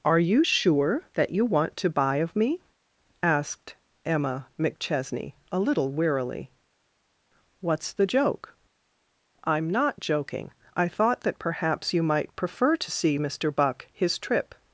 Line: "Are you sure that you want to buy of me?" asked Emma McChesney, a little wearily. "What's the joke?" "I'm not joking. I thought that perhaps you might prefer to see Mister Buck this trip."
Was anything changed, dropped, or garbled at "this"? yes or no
yes